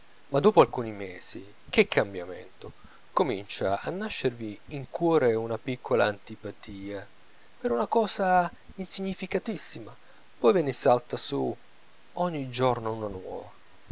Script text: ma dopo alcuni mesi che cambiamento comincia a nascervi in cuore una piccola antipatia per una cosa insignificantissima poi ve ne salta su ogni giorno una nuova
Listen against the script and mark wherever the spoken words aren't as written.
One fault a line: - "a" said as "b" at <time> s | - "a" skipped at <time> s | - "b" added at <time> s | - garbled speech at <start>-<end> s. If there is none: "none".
none